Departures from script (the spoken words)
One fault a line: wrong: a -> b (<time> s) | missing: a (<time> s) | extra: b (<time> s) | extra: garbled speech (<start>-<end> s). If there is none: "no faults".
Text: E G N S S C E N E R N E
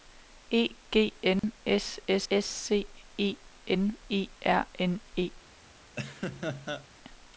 extra: S (2.3 s)